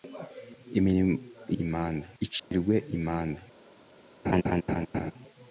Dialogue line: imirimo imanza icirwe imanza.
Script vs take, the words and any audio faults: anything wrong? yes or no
yes